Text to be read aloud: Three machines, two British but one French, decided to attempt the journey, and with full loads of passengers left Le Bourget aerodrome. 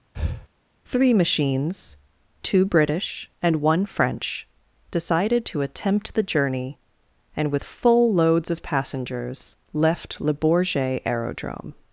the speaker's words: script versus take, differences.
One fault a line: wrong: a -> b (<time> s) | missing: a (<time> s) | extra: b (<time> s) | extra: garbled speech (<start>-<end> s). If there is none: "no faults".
wrong: but -> and (3.4 s)